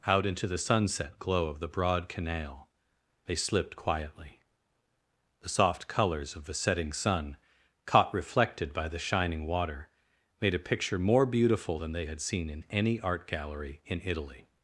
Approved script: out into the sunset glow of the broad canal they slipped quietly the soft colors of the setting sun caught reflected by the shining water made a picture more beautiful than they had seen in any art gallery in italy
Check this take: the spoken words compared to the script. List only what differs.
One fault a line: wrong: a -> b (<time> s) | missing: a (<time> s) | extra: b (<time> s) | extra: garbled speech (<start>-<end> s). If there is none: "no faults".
no faults